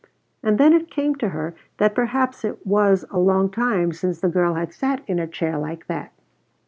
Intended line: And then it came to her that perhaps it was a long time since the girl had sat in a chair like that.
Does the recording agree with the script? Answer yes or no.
yes